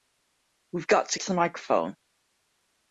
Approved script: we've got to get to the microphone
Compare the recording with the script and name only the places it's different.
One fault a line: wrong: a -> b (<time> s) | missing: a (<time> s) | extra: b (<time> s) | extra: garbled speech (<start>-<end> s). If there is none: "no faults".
missing: get (1.2 s)